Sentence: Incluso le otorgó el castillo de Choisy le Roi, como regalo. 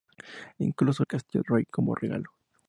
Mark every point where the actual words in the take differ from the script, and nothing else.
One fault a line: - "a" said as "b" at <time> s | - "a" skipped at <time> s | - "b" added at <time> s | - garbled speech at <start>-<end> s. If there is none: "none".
- "le otorgó" skipped at 1.1 s
- "de Choisy le" skipped at 1.4 s